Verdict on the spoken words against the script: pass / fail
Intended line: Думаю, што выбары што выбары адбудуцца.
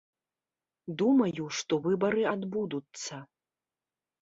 fail